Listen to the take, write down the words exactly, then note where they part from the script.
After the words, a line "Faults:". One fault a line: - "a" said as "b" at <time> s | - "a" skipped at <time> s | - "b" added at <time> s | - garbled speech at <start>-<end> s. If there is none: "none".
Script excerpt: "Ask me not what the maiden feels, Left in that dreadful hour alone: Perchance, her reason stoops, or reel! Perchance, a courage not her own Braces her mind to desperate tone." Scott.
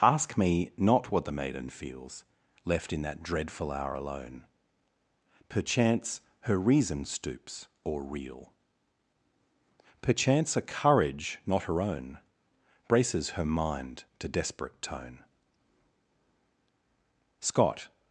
"Ask me not what the maiden feels, Left in that dreadful hour alone: Perchance, her reason stoops, or reel! Perchance, a courage not her own Braces her mind to desperate tone." Scott.
Faults:
none